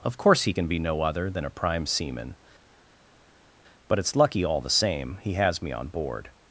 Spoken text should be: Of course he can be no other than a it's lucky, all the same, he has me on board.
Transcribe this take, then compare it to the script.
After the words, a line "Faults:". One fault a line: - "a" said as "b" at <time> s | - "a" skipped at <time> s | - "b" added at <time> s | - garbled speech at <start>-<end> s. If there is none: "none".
Of course he can be no other than a prime seaman; but it's lucky, all the same, he has me on board.
Faults:
- "prime seaman but" added at 1.5 s